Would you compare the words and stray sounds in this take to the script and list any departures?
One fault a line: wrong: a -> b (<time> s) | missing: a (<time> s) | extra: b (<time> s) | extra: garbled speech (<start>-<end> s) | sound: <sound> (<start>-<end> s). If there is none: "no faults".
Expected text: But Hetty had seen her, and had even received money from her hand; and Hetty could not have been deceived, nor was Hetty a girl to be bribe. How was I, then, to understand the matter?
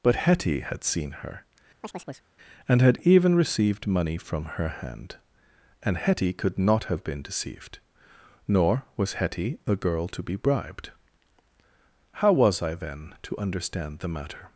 sound: chirp (1.8-2.3 s)
wrong: bribe -> bribed (10.3 s)